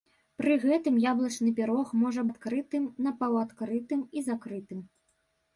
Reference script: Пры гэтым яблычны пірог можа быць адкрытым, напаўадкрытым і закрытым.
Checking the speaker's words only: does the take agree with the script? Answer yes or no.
no